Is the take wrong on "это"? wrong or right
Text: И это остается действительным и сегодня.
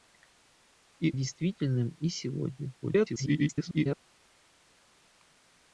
wrong